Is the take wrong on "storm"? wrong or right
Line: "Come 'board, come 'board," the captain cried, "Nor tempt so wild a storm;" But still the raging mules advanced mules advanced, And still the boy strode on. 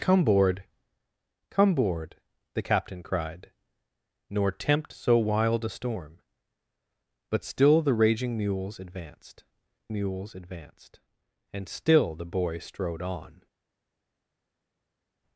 right